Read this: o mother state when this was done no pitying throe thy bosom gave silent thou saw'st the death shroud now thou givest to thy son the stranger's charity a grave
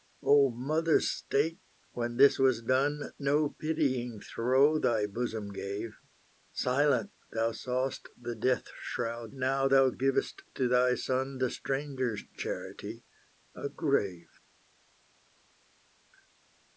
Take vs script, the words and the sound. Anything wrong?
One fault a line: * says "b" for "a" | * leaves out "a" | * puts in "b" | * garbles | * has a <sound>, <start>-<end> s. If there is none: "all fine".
all fine